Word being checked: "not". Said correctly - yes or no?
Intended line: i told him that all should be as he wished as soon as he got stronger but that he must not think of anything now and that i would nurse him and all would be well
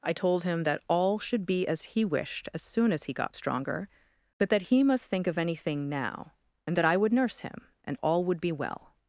no